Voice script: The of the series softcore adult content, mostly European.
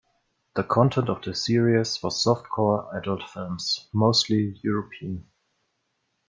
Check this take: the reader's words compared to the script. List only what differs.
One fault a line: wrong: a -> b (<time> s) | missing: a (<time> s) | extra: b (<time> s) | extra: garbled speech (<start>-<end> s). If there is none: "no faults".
extra: content (0.6 s)
extra: was (2.0 s)
wrong: content -> films (3.3 s)